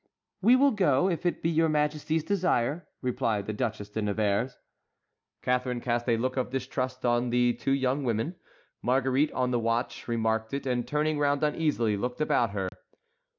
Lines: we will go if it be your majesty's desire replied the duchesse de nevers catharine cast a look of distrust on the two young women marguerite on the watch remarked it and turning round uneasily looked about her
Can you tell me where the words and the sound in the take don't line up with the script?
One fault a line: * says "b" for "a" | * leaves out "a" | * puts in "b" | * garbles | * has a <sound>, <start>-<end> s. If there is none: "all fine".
* has a dropout, 12.7-12.7 s